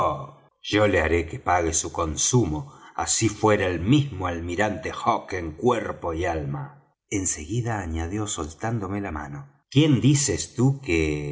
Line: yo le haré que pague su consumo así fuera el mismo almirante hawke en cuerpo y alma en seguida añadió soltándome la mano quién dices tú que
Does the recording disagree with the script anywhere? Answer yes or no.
no